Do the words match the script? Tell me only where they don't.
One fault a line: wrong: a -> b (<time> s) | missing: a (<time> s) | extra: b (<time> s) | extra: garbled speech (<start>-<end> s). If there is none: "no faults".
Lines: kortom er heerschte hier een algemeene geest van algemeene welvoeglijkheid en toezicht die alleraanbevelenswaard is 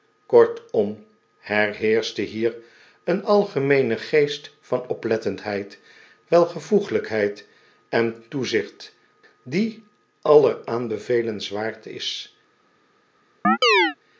wrong: algemeene -> oplettendheid (4.9 s)